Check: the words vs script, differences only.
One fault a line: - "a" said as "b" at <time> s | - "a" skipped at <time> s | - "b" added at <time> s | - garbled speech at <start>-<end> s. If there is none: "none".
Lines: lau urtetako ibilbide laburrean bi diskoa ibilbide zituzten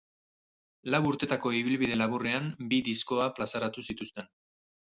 - "ibilbide" said as "plazaratu" at 3.4 s